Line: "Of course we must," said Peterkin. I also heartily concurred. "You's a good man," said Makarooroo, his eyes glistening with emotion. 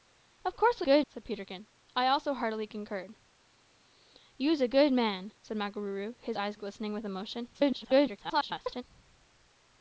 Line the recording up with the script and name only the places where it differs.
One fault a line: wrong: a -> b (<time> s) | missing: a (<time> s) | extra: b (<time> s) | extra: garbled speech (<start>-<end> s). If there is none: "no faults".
wrong: must -> good (0.8 s)
extra: garbled speech (7.5-8.8 s)